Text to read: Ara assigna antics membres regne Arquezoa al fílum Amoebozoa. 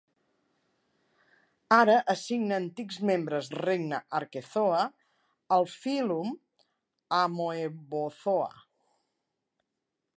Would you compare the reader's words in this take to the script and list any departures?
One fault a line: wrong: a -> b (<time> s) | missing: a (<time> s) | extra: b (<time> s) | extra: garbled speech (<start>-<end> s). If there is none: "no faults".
no faults